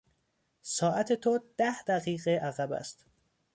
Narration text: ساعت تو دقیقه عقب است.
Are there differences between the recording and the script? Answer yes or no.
yes